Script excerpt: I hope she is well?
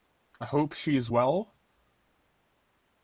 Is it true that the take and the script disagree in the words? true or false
false